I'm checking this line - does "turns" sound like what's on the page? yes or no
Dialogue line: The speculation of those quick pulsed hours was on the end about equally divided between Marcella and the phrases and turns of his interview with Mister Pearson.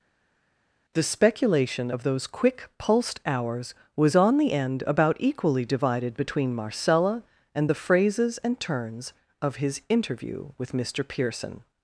yes